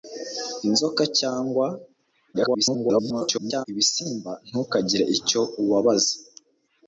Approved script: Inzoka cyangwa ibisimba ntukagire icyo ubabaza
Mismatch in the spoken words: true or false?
true